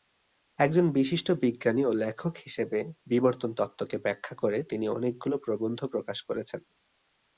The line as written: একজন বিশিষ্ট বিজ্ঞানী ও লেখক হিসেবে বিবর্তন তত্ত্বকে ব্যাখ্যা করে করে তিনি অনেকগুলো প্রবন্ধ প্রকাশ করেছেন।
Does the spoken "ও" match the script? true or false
true